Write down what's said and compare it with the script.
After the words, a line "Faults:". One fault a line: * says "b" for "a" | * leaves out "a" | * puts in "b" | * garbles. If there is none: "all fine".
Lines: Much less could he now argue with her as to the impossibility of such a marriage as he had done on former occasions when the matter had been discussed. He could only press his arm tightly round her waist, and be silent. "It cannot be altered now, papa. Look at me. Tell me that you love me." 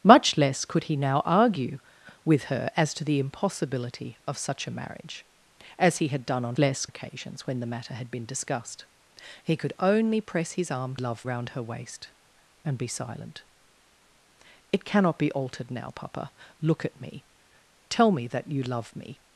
Much less could he now argue with her as to the impossibility of such a marriage as he had done on less occasions when the matter had been discussed. He could only press his arm love round her waist, and be silent. "It cannot be altered now, papa. Look at me. Tell me that you love me."
Faults:
* says "less" for "former"
* says "love" for "tightly"